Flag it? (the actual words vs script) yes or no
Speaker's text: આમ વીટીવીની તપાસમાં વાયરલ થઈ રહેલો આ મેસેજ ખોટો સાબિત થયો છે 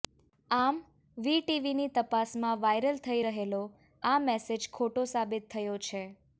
no